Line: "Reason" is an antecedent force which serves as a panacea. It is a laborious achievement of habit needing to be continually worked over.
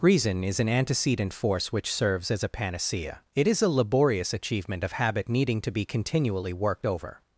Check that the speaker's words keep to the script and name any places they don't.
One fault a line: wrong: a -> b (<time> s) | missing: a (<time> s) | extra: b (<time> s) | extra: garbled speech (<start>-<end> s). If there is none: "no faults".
no faults